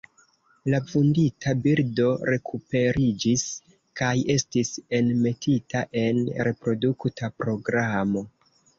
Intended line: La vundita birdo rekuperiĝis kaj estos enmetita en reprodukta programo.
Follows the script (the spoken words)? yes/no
no